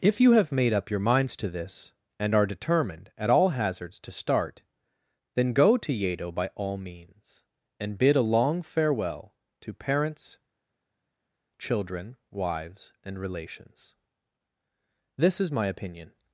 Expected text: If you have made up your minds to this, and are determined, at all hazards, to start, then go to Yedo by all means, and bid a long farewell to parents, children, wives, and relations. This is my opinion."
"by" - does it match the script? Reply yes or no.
yes